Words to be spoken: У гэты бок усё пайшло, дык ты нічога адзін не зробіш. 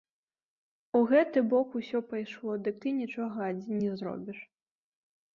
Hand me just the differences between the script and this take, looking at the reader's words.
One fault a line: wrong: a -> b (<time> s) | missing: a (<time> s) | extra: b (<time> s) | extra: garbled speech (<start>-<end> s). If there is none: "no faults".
no faults